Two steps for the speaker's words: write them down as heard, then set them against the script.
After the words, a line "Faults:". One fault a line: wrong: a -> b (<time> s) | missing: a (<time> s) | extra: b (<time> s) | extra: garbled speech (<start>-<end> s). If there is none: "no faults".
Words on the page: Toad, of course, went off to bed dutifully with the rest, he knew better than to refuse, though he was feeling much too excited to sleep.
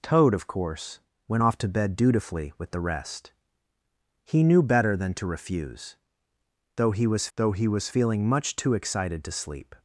Toad, of course, went off to bed dutifully with the rest, he knew better than to refuse, though he was though he was feeling much too excited to sleep.
Faults:
extra: though he was (7.4 s)